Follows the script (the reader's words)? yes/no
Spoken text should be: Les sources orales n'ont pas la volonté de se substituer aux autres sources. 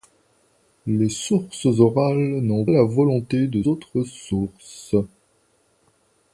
no